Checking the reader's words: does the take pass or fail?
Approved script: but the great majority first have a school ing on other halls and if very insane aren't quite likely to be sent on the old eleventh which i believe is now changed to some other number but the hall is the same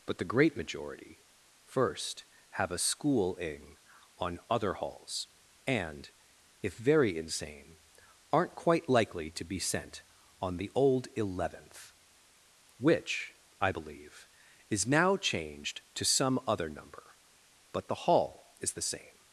pass